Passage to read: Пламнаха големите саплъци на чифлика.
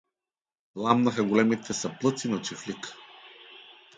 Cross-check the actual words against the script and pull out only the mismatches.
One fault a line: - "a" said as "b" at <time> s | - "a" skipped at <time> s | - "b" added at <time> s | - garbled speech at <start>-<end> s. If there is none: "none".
none